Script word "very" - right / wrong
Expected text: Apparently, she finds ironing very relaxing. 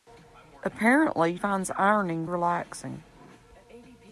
wrong